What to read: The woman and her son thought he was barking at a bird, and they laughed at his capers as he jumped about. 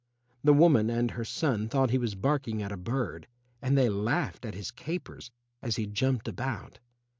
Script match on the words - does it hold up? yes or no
yes